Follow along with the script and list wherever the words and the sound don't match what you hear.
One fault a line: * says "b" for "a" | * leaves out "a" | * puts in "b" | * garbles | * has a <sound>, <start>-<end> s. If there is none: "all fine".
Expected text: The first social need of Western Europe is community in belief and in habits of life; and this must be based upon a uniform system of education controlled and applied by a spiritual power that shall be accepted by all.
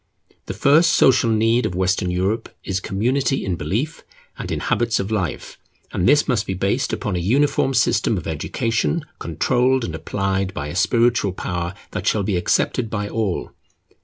all fine